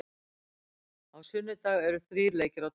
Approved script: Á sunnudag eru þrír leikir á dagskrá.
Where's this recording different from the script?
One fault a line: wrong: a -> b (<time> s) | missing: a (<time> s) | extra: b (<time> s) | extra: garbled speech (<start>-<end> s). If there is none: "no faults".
no faults